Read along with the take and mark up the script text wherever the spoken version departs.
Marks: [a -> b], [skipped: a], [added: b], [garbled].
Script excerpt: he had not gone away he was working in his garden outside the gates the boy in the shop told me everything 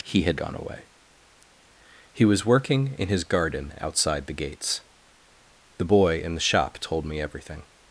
he had [skipped: not] gone away he was working in his garden outside the gates the boy in the shop told me everything